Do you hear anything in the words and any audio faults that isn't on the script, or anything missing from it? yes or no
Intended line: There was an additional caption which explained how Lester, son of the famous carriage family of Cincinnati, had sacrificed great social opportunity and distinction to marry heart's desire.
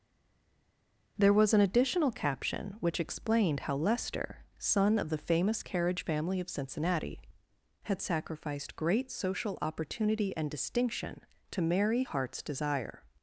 no